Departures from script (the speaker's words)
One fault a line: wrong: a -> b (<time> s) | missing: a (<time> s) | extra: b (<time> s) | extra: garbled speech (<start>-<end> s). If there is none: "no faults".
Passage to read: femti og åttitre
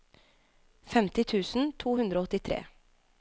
extra: tusen to hundre (1.3 s)